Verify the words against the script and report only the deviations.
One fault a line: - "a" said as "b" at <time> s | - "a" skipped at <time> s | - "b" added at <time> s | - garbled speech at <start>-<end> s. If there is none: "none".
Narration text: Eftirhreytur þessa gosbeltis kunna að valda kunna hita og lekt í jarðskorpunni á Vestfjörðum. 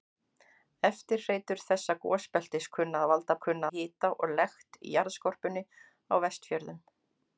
none